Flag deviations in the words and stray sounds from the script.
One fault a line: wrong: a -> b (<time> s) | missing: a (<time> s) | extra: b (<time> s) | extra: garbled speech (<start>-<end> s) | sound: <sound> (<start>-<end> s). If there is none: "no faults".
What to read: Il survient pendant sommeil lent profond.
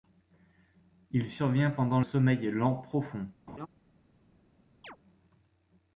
sound: laugh (3.5-3.7 s)
sound: chirp (4.8-5.0 s)